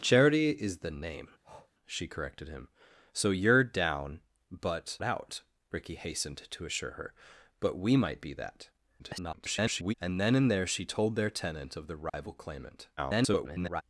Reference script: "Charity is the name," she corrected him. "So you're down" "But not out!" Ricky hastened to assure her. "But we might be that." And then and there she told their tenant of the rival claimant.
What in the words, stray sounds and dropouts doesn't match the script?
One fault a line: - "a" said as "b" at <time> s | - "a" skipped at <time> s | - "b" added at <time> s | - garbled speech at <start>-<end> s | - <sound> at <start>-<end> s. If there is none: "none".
- breath at 1.4-1.7 s
- "not" skipped at 5.0 s
- garbled speech at 9.0-9.9 s
- dropout at 12.1-12.1 s
- garbled speech at 13.0-13.8 s